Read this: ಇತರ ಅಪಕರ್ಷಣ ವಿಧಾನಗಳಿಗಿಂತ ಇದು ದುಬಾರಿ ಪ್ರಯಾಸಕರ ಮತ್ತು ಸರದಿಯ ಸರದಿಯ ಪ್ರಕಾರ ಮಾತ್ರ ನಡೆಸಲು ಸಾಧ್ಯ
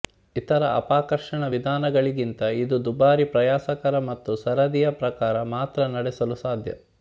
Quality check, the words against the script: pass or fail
fail